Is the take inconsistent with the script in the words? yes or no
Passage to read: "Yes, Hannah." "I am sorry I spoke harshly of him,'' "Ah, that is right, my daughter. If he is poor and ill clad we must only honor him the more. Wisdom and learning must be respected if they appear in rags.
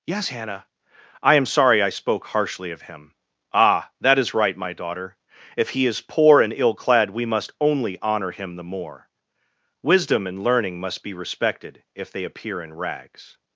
no